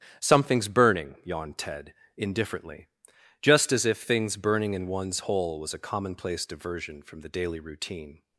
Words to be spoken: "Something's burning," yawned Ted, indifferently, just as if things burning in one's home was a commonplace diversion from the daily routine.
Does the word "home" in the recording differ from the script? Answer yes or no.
yes